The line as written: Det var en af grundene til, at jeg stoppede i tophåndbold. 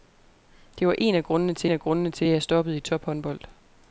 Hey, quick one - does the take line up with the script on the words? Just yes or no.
no